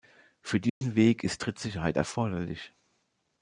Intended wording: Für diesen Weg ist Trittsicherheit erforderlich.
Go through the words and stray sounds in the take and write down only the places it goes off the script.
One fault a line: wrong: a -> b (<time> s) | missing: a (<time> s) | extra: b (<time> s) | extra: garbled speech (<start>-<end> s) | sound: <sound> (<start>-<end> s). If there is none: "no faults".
sound: dropout (0.7-0.8 s)